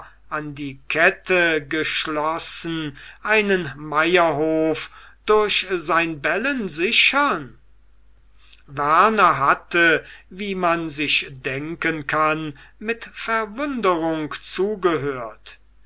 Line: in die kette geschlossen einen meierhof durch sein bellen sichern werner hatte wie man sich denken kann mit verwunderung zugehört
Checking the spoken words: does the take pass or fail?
fail